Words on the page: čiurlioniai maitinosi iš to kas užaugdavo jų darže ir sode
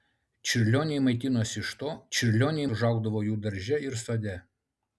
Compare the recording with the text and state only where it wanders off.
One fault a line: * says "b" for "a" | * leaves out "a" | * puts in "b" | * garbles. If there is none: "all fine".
* says "čiurlioniai" for "kas"